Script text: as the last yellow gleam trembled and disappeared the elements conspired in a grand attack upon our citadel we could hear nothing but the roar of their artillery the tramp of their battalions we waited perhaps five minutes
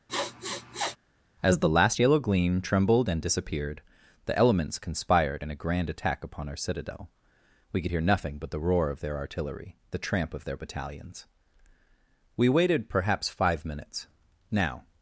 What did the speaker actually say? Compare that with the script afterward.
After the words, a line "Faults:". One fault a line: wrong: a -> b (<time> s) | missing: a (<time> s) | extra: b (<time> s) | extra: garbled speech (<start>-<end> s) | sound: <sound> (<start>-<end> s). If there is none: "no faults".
as the last yellow gleam trembled and disappeared the elements conspired in a grand attack upon our citadel we could hear nothing but the roar of their artillery the tramp of their battalions we waited perhaps five minutes now
Faults:
sound: sniff (0.1-1.0 s)
extra: now (14.5 s)